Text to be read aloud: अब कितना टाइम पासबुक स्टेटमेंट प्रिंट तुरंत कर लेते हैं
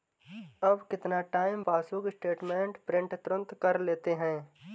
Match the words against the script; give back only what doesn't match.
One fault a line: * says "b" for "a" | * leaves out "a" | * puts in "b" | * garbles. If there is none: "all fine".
all fine